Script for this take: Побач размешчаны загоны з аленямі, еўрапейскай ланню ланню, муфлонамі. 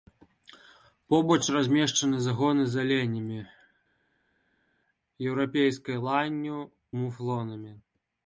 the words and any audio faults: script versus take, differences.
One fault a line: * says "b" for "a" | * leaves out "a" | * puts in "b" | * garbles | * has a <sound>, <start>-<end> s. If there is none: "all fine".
* leaves out "ланню"